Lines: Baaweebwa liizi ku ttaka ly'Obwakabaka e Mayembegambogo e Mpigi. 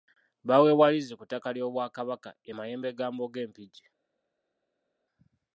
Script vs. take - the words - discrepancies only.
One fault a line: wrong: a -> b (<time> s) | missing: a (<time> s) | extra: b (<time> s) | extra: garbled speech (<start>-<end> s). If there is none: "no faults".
no faults